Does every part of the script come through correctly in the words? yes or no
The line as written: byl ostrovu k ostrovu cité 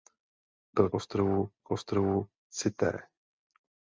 yes